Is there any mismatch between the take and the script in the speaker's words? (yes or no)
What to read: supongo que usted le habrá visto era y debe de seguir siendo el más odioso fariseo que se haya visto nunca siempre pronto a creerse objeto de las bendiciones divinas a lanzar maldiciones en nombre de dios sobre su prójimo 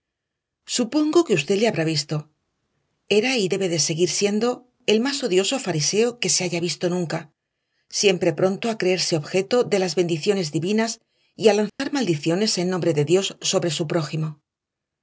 yes